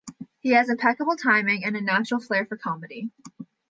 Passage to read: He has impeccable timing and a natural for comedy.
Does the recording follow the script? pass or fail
fail